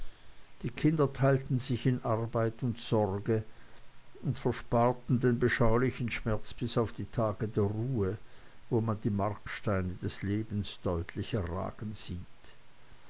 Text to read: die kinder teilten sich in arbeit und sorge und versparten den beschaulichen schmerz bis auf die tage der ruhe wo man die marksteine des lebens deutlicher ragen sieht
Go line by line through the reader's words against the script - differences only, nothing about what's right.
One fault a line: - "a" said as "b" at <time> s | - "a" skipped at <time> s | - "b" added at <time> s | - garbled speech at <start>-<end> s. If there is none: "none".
none